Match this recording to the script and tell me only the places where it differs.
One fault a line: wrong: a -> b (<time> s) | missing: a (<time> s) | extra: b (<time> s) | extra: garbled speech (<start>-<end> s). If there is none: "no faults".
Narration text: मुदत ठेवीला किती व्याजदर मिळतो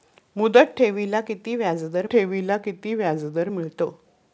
extra: ठेवीला किती व्याजदर (2.1 s)